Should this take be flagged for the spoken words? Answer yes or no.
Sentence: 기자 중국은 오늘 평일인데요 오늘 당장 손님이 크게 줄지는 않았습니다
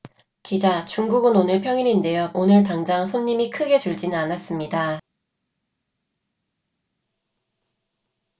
no